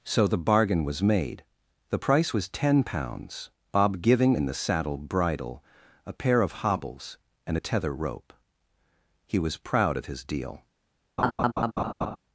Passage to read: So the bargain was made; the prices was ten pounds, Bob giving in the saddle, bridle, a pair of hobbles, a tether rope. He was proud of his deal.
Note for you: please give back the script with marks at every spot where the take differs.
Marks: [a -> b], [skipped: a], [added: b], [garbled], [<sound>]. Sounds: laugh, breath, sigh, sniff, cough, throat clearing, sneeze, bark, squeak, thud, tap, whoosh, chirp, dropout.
So the bargain was made; the [prices -> price] was ten pounds, Bob giving in the saddle, bridle, a pair of hobbles, [added: and] a tether rope. He was proud of his deal. [laugh]